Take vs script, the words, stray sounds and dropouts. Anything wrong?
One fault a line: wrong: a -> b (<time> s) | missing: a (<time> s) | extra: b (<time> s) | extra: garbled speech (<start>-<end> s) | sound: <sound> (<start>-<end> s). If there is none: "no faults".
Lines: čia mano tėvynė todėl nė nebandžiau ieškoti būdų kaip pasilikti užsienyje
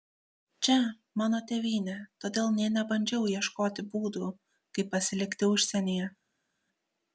no faults